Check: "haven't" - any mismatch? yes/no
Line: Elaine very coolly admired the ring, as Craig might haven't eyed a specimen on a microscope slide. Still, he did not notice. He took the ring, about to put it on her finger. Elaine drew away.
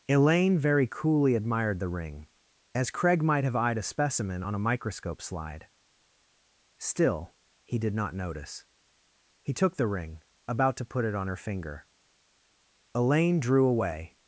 yes